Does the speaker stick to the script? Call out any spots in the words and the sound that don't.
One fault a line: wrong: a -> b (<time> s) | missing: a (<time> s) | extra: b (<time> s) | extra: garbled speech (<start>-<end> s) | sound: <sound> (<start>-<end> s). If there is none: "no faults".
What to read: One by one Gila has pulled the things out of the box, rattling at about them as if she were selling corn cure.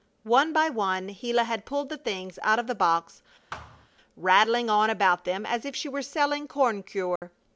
wrong: has -> had (1.4 s)
sound: thud (3.5-3.9 s)
wrong: at -> on (4.7 s)
sound: dropout (7.2-7.2 s)